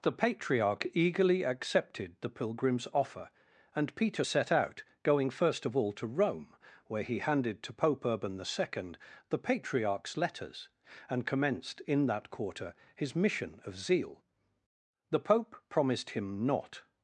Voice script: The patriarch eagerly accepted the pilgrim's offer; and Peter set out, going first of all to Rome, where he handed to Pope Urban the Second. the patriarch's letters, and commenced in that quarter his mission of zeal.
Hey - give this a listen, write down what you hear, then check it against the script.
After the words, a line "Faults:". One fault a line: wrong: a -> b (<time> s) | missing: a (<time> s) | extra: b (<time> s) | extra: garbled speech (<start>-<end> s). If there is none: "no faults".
The patriarch eagerly accepted the pilgrim's offer; and Peter set out, going first of all to Rome, where he handed to Pope Urban the Second. the patriarch's letters, and commenced in that quarter his mission of zeal. The pope promised him not
Faults:
extra: The pope promised him not (15.1 s)